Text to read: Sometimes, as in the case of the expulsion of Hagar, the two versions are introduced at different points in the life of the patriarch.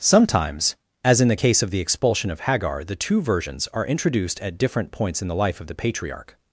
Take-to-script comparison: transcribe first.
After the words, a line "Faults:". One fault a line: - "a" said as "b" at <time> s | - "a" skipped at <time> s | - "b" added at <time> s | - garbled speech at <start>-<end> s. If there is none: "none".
Sometimes, as in the case of the expulsion of Hagar, the two versions are introduced at different points in the life of the patriarch.
Faults:
none